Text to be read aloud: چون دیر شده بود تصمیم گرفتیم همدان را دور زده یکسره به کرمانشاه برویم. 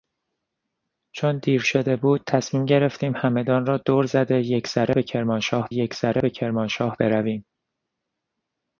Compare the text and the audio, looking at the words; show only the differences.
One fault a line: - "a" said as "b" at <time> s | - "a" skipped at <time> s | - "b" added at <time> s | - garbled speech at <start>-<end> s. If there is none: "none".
- "یکسره به کرمانشاه" added at 5.7 s